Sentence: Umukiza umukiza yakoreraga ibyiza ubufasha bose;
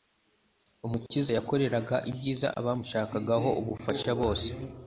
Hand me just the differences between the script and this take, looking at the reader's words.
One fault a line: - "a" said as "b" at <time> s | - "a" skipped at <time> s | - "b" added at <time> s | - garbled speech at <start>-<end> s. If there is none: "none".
- "umukiza" skipped at 1.3 s
- "abamushakagaho" added at 2.6 s